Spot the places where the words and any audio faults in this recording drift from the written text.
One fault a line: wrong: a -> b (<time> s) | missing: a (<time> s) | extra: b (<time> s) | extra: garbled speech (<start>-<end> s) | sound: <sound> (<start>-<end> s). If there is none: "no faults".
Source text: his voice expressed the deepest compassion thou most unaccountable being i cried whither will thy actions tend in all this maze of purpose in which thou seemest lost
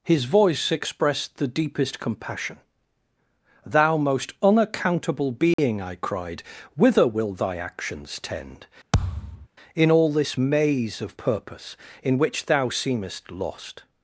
sound: dropout (5.5-5.6 s)
sound: thud (8.9-9.5 s)